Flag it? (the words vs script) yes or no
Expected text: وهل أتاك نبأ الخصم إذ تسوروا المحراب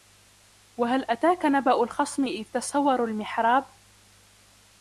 no